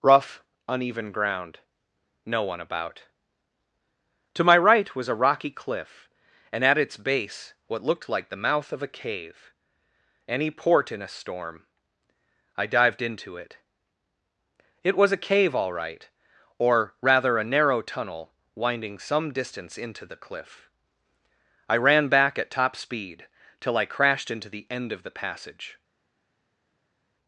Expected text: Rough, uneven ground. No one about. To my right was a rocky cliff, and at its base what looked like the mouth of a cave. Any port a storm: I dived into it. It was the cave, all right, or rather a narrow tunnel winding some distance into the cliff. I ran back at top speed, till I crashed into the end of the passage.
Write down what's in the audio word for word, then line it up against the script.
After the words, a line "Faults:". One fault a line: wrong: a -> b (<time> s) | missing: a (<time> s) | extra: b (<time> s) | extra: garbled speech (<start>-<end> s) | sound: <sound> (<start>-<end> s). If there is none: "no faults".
Rough, uneven ground. No one about. To my right was a rocky cliff, and at its base what looked like the mouth of a cave. Any port in a storm: I dived into it. It was a cave, all right, or rather a narrow tunnel winding some distance into the cliff. I ran back at top speed, till I crashed into the end of the passage.
Faults:
extra: in (10.9 s)
wrong: the -> a (15.1 s)